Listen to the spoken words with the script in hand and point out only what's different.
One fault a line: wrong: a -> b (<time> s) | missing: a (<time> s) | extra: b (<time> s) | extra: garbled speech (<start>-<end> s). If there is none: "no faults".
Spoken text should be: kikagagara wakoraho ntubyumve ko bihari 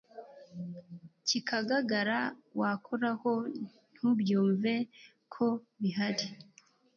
no faults